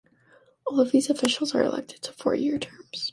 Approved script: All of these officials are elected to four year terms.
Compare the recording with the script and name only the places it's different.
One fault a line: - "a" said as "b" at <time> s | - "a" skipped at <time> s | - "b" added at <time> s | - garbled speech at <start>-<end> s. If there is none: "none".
none